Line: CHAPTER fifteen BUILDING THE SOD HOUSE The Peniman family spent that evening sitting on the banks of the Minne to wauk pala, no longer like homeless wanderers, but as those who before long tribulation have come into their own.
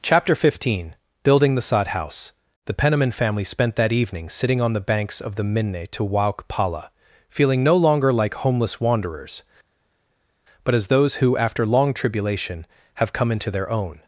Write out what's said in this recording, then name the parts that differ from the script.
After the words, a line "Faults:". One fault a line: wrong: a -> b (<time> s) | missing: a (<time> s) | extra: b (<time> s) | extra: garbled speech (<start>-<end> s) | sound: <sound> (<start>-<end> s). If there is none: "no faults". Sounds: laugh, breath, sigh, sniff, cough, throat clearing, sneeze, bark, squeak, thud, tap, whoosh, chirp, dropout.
CHAPTER fifteen BUILDING THE SOD HOUSE The Peniman family spent that evening sitting on the banks of the Minne to wauk pala, feeling no longer like homeless wanderers, but as those who after long tribulation have come into their own.
Faults:
extra: feeling (7.3 s)
wrong: before -> after (11.4 s)